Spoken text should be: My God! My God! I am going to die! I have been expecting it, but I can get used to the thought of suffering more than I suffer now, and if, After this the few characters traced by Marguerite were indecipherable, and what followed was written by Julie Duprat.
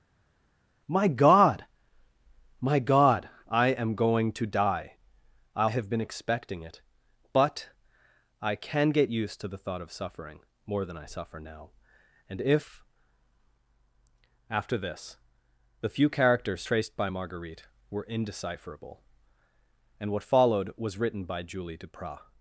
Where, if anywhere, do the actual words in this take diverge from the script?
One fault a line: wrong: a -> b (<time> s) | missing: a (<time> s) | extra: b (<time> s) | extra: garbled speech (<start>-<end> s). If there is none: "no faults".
no faults